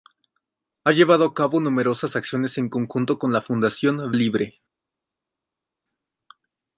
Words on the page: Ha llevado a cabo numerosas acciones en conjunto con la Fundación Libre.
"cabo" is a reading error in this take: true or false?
false